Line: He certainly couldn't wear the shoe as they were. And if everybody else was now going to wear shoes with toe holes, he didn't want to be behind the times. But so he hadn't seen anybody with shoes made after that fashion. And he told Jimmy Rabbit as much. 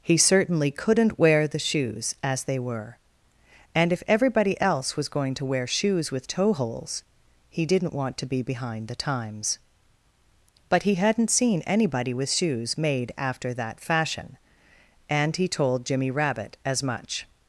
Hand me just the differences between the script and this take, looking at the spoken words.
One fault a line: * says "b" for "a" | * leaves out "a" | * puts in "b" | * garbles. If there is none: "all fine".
* says "shoes" for "shoe"
* leaves out "now"
* leaves out "so"